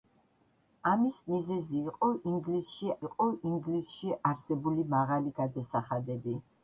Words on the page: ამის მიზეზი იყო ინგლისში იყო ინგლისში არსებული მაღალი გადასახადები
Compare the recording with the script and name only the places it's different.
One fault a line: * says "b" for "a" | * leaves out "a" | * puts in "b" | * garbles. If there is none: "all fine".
all fine